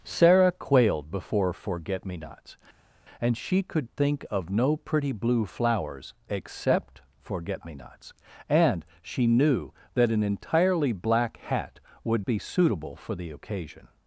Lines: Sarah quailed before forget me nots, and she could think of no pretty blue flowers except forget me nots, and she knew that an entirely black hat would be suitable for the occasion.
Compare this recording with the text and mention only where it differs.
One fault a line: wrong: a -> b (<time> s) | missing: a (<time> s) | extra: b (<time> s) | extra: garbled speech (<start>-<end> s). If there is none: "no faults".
no faults